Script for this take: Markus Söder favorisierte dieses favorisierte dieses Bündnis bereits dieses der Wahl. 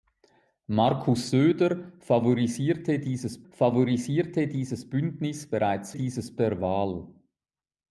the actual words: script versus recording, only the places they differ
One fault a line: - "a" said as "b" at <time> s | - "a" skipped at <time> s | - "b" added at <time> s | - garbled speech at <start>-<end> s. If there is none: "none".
none